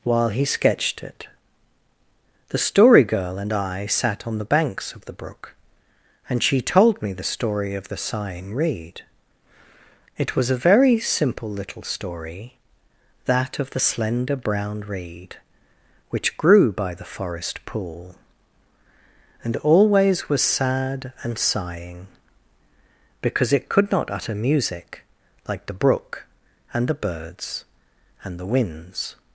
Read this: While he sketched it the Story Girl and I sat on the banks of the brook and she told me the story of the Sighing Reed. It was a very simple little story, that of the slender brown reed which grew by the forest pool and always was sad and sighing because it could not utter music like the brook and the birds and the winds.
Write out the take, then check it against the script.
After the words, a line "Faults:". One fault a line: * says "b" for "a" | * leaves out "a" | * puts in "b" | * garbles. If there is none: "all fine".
While he sketched it the Story Girl and I sat on the banks of the brook and she told me the story of the Sighing Reed. It was a very simple little story, that of the slender brown reed which grew by the forest pool and always was sad and sighing because it could not utter music like the brook and the birds and the winds.
Faults:
all fine